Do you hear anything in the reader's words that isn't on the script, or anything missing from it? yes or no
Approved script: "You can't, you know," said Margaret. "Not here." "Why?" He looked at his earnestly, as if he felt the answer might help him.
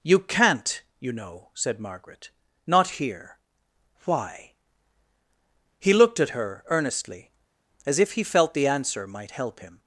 yes